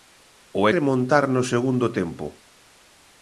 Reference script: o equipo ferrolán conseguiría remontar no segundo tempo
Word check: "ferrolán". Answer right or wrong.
wrong